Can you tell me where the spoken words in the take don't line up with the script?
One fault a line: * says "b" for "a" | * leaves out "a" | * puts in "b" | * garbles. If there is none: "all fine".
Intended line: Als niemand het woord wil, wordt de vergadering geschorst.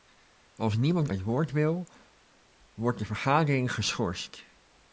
all fine